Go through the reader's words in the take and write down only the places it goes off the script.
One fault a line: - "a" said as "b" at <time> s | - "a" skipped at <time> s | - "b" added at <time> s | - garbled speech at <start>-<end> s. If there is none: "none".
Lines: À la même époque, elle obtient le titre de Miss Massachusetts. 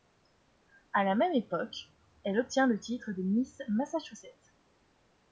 none